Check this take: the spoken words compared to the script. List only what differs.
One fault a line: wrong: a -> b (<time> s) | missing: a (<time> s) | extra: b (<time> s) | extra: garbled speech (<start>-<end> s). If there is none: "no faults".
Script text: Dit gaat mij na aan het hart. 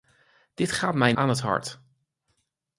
missing: na (1.1 s)